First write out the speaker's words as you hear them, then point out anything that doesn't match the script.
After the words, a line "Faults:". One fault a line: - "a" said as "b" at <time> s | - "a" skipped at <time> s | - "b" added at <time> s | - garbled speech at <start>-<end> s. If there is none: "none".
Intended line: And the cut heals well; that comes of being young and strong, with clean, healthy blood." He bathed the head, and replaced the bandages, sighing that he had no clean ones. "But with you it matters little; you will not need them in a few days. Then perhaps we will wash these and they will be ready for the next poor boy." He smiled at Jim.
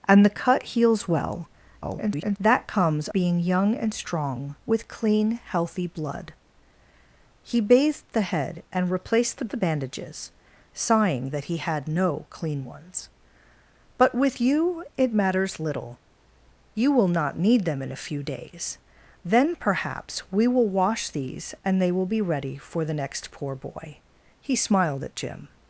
And the cut heals well; [garbled] that comes being young and strong, with clean, healthy blood." He bathed the head, and replaced the the bandages, sighing that he had no clean ones. "But with you it matters little; you will not need them in a few days. Then perhaps we will wash these and they will be ready for the next poor boy." He smiled at Jim.
Faults:
- garbled speech at 1.8-2.4 s
- "of" skipped at 3.1 s
- "the" added at 9.5 s